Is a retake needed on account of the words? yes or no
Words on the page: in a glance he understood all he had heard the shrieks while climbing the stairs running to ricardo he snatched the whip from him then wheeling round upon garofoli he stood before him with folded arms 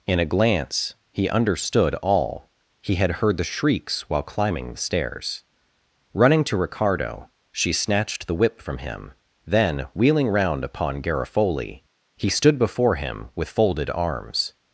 yes